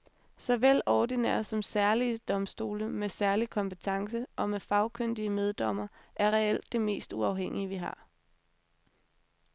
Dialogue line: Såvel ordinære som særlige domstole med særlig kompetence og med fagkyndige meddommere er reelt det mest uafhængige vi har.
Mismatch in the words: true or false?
false